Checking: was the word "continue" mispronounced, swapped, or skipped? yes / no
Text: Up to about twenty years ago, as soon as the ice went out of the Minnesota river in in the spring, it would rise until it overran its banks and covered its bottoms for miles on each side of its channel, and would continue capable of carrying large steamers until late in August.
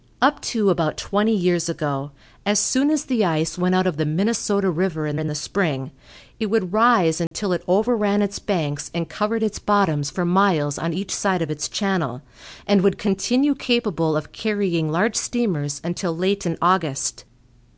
no